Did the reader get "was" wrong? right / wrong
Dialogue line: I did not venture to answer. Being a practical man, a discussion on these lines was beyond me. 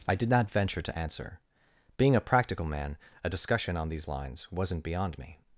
wrong